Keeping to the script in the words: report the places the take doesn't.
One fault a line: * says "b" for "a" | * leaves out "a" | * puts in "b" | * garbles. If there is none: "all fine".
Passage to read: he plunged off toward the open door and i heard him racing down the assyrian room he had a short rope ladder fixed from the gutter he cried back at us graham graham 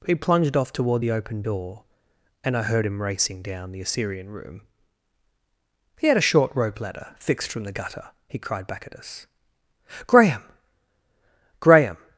all fine